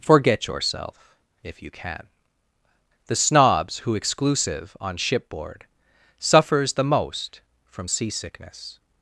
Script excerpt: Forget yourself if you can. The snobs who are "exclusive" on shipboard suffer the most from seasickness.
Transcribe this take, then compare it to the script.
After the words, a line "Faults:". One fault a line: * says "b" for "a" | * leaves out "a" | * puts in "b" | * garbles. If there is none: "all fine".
Forget yourself if you can. The snobs who "exclusive" on shipboard suffers the most from seasickness.
Faults:
* leaves out "are"
* says "suffers" for "suffer"